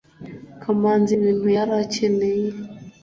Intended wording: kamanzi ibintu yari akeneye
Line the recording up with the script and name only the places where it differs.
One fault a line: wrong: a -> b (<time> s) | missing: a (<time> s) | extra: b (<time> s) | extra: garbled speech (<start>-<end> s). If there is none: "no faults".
no faults